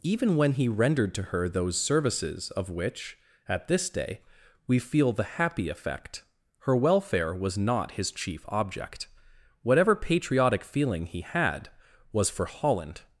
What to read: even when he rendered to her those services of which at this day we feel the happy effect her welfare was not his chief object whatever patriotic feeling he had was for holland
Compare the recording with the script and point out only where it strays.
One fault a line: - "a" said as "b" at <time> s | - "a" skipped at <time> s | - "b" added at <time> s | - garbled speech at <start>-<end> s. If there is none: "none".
none